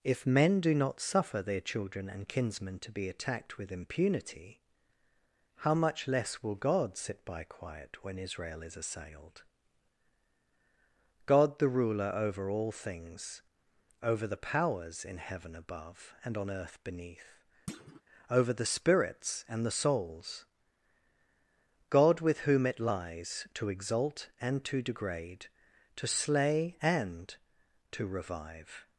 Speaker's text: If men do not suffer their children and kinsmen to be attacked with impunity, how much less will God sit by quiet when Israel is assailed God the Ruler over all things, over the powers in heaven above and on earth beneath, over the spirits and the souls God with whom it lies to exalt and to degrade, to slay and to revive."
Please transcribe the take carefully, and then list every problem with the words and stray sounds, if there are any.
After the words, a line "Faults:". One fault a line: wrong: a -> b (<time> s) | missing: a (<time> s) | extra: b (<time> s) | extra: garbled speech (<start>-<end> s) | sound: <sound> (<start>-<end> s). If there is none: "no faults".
If men do not suffer their children and kinsmen to be attacked with impunity, how much less will God sit by quiet when Israel is assailed God the Ruler over all things, over the powers in heaven above and on earth beneath, over the spirits and the souls God with whom it lies to exalt and to degrade, to slay and to revive."
Faults:
sound: thud (17.7-18.0 s)